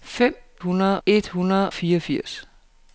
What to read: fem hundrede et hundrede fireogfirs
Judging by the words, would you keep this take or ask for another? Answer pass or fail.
pass